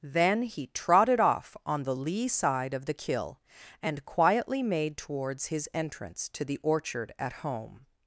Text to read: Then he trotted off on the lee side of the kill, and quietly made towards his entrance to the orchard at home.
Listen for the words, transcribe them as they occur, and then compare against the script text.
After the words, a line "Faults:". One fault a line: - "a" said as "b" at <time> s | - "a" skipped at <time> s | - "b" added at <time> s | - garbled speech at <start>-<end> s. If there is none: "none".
Then he trotted off on the lee side of the kill, and quietly made towards his entrance to the orchard at home.
Faults:
none